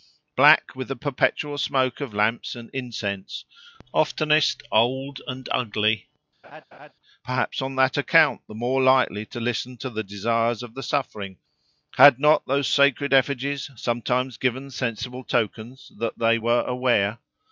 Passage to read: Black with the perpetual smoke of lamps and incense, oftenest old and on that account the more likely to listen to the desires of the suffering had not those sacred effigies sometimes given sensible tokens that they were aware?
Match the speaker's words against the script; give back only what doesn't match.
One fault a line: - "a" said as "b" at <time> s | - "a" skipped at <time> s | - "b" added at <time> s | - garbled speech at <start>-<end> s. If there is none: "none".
- "ugly perhaps" added at 5.5 s